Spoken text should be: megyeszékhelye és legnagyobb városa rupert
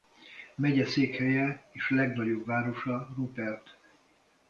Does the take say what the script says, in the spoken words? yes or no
yes